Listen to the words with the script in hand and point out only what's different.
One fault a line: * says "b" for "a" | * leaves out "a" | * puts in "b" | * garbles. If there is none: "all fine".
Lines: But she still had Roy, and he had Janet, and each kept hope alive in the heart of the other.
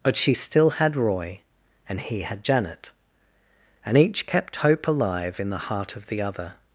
all fine